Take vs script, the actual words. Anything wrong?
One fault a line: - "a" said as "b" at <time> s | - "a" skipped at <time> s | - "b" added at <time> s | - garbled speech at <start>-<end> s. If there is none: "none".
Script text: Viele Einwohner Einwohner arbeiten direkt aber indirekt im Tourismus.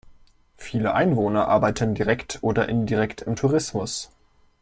- "Einwohner" skipped at 1.5 s
- "aber" said as "oder" at 2.4 s